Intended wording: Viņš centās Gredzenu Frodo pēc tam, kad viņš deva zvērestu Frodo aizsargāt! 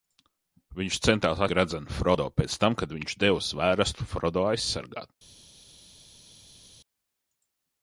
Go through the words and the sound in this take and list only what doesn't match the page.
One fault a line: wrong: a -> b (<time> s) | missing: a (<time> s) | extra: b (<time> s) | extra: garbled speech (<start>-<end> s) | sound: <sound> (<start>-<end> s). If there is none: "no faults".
no faults